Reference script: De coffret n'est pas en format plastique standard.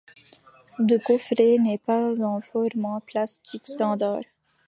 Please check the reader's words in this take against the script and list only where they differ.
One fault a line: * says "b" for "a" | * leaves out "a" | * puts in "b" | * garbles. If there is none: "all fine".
all fine